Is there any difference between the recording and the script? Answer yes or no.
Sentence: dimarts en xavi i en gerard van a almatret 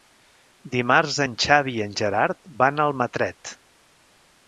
no